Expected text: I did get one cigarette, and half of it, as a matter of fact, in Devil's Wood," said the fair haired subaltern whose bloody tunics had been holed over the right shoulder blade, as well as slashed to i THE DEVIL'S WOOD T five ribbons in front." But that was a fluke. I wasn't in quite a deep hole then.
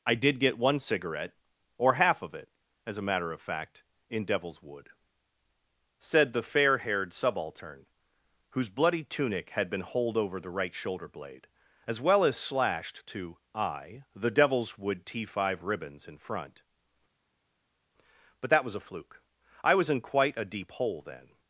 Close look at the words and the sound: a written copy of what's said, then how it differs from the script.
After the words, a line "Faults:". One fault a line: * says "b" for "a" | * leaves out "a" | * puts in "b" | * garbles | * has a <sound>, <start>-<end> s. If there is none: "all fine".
I did get one cigarette, or half of it, as a matter of fact, in Devil's Wood," said the fair haired subaltern whose bloody tunic had been holed over the right shoulder blade, as well as slashed to i THE DEVIL'S WOOD T five ribbons in front." But that was a fluke. I was in quite a deep hole then.
Faults:
* says "or" for "and"
* says "tunic" for "tunics"
* says "was" for "wasn't"